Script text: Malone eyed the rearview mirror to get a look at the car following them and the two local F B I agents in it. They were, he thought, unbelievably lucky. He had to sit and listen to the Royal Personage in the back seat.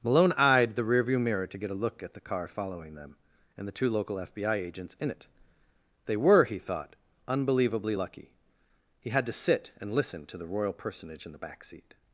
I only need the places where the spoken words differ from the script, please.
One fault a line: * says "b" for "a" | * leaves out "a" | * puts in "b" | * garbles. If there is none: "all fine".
all fine